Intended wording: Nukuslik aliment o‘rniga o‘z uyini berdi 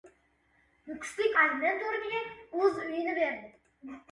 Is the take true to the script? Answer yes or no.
yes